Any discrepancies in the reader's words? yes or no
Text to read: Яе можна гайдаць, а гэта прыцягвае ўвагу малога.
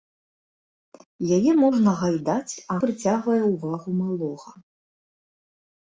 yes